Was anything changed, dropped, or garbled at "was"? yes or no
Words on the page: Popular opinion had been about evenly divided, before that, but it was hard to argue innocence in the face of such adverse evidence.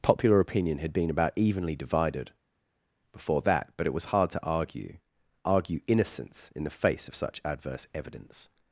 no